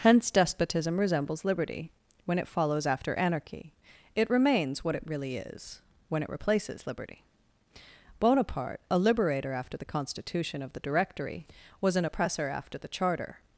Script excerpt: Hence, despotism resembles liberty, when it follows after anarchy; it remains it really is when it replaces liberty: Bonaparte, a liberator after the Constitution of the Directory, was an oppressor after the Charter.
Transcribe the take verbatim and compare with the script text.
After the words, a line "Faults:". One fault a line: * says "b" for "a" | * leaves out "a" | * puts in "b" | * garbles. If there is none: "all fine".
Hence, despotism resembles liberty, when it follows after anarchy; it remains what it really is when it replaces liberty: Bonaparte, a liberator after the Constitution of the Directory, was an oppressor after the Charter.
Faults:
* puts in "what"